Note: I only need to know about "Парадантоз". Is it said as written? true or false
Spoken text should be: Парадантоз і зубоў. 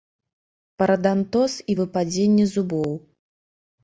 true